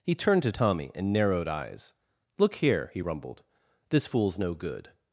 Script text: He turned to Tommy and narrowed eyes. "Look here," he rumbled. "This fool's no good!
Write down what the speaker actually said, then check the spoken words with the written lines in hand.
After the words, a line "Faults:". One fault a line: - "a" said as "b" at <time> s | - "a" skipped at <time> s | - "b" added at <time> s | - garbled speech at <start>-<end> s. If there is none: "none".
He turned to Tommy and narrowed eyes. "Look here," he rumbled. "This fool's no good!
Faults:
none